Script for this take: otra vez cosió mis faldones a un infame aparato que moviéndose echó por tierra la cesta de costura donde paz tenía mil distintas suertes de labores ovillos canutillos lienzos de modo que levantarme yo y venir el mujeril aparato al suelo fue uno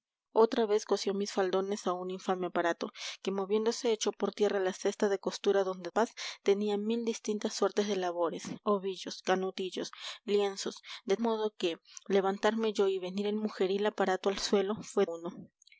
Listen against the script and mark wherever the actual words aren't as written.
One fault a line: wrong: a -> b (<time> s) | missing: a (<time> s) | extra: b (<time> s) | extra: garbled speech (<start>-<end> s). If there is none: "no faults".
no faults